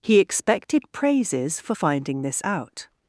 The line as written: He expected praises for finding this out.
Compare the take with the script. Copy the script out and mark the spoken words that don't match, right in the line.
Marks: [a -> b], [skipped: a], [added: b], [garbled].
He expected praises for finding this out.